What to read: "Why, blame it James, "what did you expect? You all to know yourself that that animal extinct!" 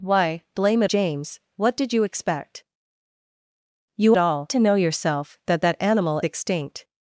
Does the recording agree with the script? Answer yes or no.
yes